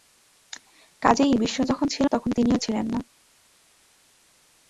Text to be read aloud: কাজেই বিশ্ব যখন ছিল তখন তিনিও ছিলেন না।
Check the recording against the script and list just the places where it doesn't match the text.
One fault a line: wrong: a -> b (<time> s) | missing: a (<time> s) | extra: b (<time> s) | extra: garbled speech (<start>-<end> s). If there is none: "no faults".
no faults